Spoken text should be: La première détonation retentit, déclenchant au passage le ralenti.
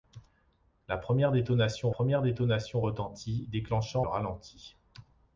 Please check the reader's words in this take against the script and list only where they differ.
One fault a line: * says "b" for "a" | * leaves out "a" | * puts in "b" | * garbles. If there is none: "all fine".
* puts in "première détonation"
* leaves out "au passage le"